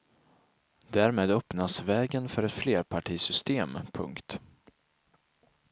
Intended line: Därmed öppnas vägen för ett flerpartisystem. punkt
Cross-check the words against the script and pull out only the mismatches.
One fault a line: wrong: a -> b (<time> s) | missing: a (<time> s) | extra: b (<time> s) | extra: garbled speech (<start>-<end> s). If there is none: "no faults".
no faults